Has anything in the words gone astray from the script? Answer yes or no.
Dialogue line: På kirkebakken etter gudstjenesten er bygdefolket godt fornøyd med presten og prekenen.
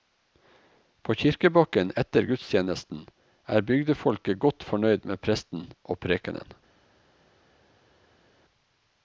no